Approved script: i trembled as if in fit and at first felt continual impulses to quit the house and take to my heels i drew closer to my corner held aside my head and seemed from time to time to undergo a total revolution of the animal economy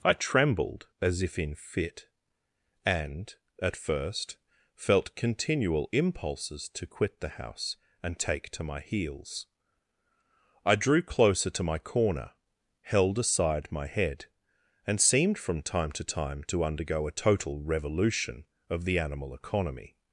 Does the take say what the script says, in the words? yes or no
yes